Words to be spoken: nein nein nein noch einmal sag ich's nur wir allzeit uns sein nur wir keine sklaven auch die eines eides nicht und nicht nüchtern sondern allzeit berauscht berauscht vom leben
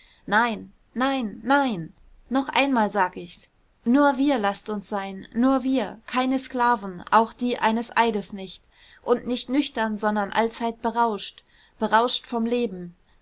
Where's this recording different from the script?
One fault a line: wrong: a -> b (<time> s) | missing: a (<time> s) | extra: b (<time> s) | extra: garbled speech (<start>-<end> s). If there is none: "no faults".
wrong: allzeit -> laßt (4.4 s)